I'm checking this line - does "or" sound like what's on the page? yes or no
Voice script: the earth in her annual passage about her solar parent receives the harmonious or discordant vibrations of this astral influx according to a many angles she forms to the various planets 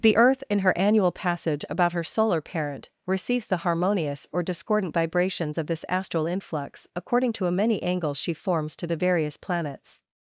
yes